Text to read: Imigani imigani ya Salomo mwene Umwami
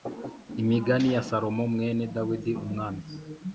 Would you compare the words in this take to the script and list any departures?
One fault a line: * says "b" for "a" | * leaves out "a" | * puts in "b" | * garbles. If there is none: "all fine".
* leaves out "imigani"
* puts in "Dawidi"